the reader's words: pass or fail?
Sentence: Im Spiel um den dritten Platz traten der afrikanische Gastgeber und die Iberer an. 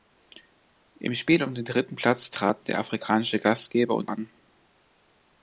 fail